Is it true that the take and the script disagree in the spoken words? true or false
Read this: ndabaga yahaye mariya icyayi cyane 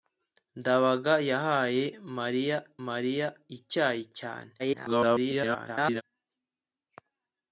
true